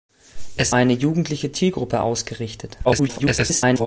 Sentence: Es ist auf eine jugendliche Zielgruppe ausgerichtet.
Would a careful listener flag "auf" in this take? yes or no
yes